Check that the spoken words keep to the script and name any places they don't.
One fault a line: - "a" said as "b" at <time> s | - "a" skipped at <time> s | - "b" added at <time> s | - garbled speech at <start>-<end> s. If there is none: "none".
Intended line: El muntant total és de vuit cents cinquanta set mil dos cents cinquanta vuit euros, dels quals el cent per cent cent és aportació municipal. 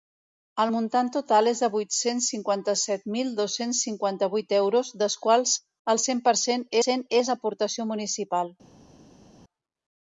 none